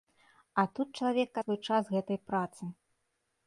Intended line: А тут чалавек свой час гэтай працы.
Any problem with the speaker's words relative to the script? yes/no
no